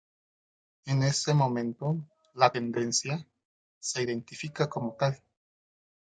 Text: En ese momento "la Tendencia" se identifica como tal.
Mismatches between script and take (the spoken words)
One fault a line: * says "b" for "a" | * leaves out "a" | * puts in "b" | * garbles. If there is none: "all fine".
all fine